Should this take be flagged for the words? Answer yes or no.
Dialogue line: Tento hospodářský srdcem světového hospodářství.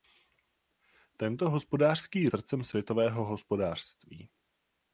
no